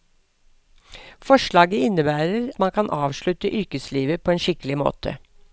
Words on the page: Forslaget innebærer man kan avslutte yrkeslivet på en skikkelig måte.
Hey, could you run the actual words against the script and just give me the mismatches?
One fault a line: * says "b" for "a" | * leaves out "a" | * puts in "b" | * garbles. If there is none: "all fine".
all fine